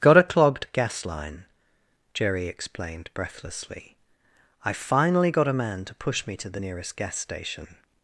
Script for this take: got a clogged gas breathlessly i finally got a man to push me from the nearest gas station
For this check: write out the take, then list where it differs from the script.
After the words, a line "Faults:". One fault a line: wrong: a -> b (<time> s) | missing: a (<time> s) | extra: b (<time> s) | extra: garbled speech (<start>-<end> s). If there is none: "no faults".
got a clogged gas line jerry explained breathlessly i finally got a man to push me to the nearest gas station
Faults:
extra: line jerry explained (1.0 s)
wrong: from -> to (6.4 s)